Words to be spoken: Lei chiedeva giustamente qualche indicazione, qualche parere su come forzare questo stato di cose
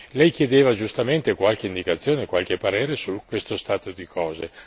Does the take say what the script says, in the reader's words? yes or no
no